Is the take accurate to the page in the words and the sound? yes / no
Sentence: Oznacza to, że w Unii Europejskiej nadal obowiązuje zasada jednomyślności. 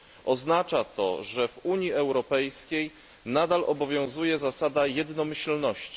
yes